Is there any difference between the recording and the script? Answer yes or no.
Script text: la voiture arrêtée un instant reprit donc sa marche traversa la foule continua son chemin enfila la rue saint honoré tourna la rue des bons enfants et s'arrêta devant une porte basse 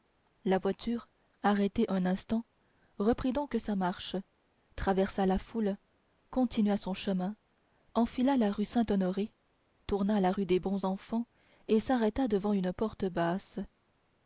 no